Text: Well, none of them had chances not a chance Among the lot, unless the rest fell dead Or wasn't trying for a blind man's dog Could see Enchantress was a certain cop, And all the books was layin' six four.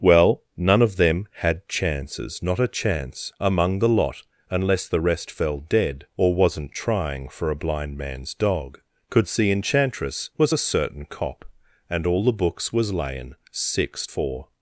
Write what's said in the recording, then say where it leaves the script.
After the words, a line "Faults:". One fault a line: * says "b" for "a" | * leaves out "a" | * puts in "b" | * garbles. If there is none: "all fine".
Well, none of them had chances not a chance Among the lot, unless the rest fell dead Or wasn't trying for a blind man's dog Could see Enchantress was a certain cop, And all the books was layin' six four.
Faults:
all fine